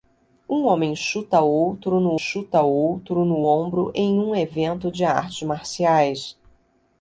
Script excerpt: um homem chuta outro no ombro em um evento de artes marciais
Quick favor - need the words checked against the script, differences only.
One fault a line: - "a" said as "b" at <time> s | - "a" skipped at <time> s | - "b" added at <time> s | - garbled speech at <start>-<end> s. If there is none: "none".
- "chuta outro no" added at 2.1 s